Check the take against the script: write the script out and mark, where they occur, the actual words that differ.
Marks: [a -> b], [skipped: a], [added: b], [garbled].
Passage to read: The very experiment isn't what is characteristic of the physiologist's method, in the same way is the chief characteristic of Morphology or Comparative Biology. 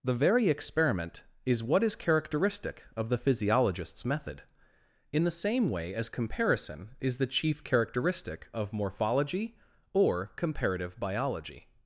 The very experiment [isn't -> is] what is characteristic of the physiologist's method, in the same way [added: as comparison] is the chief characteristic of Morphology or Comparative Biology.